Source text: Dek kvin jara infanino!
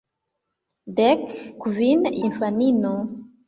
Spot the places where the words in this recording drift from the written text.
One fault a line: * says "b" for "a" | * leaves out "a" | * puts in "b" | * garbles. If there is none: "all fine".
* leaves out "jara"